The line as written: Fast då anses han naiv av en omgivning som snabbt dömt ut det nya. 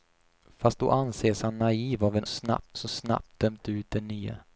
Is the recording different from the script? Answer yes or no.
yes